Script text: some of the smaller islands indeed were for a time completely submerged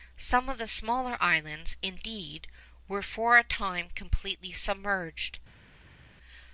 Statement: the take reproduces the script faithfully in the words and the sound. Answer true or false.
true